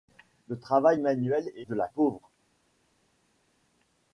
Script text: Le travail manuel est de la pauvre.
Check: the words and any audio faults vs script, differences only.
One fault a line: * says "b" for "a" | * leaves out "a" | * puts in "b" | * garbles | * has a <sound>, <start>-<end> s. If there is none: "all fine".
all fine